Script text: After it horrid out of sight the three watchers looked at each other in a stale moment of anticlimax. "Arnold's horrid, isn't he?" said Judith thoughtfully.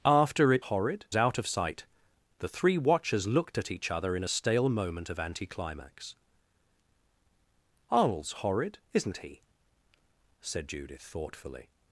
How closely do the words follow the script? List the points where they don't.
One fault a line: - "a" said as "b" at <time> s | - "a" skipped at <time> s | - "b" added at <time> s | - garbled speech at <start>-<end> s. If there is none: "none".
none